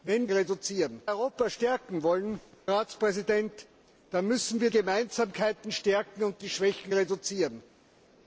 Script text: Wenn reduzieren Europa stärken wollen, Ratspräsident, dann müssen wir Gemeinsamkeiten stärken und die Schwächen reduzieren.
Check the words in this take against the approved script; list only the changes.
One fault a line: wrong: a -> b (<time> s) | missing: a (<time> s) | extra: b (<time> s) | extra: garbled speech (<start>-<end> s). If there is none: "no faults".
no faults